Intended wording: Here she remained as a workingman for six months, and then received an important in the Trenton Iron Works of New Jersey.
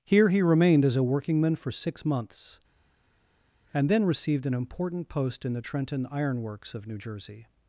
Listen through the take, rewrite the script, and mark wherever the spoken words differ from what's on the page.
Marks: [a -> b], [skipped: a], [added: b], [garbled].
Here [she -> he] remained as a workingman for six months, and then received an important [added: post] in the Trenton Iron Works of New Jersey.